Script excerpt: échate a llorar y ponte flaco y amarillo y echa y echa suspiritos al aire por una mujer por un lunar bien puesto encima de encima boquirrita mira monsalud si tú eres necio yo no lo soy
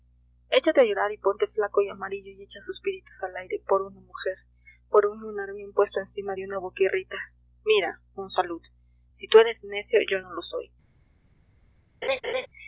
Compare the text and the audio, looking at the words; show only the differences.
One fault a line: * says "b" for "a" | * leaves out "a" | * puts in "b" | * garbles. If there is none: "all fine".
* leaves out "y echa"
* says "una" for "encima"